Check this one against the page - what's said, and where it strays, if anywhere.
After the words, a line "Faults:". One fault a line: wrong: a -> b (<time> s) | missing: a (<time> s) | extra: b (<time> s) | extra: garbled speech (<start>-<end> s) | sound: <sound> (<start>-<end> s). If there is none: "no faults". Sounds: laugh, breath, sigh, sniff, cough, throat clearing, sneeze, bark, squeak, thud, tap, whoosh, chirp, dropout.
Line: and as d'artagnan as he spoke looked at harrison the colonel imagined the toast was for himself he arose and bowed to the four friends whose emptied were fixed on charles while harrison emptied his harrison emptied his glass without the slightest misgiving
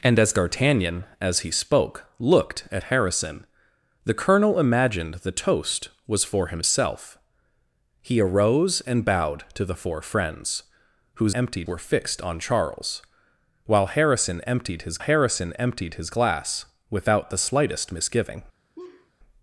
and as d'artagnan as he spoke looked at harrison the colonel imagined the toast was for himself he arose and bowed to the four friends whose emptied were fixed on charles while harrison emptied his harrison emptied his glass without the slightest misgiving
Faults:
sound: laugh (18.8-19.1 s)